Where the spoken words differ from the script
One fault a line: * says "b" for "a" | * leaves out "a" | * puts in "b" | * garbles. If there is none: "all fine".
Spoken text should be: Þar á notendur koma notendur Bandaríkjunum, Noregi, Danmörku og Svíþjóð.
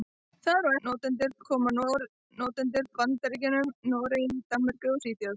all fine